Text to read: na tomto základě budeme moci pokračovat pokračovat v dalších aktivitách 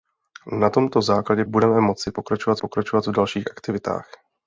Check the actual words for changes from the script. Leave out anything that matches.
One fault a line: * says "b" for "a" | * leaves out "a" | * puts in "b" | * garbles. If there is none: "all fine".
all fine